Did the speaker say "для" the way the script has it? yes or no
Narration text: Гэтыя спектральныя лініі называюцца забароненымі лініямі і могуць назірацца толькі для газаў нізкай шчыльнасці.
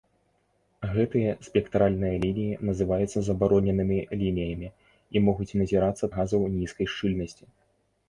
no